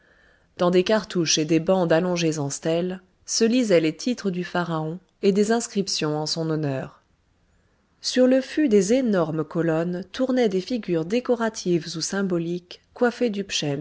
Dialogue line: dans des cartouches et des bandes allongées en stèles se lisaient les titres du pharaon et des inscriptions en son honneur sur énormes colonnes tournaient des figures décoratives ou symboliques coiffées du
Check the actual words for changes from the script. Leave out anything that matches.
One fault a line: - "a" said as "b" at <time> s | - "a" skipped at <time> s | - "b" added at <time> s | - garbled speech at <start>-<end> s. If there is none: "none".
- "le fût des" added at 8.2 s